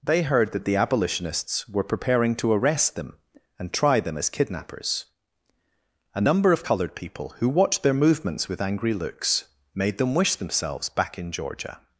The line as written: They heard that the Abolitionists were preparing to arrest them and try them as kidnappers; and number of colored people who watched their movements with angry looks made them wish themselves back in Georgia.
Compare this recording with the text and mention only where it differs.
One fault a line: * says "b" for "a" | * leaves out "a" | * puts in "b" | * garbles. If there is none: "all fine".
all fine